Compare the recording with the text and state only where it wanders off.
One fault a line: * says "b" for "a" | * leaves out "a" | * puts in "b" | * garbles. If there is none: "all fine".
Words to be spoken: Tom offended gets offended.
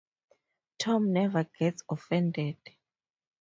* says "never" for "offended"